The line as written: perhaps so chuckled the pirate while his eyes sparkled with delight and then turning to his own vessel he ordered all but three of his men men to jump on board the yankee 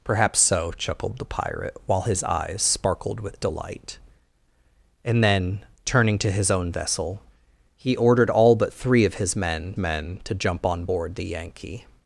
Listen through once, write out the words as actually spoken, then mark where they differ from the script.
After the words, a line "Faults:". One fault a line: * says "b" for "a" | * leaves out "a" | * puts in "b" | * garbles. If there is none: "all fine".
perhaps so chuckled the pirate while his eyes sparkled with delight and then turning to his own vessel he ordered all but three of his men men to jump on board the yankee
Faults:
all fine